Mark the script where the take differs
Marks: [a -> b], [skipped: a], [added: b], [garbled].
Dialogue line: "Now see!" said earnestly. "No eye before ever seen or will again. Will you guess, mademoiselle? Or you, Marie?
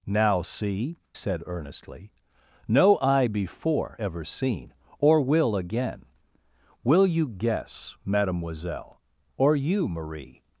"Now see!" said earnestly. "No eye before ever seen or will again. Will you guess, mademoiselle? Or you, Marie?